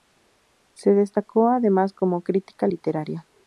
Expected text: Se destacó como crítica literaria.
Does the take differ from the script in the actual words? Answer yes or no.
yes